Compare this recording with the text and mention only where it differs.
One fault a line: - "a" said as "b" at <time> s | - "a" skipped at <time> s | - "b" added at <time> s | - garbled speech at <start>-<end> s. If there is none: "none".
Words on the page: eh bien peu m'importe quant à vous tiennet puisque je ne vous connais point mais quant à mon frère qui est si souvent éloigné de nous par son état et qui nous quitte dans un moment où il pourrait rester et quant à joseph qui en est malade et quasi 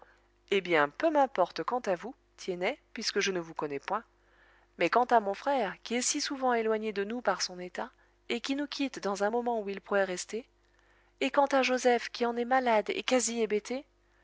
none